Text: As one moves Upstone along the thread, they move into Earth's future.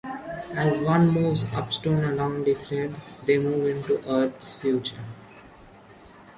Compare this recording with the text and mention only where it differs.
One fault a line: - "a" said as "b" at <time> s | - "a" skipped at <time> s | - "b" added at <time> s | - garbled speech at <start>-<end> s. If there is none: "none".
none